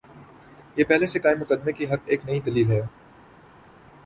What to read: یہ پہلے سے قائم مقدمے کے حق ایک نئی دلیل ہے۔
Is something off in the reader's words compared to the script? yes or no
no